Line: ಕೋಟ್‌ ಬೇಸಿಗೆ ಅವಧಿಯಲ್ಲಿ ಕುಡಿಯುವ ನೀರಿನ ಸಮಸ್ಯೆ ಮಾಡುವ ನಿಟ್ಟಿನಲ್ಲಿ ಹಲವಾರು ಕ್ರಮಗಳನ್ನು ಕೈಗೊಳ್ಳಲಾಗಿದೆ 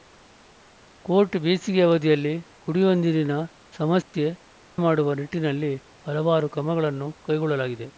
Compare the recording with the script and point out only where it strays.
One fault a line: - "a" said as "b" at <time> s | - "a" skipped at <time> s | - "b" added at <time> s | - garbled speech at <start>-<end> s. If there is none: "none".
none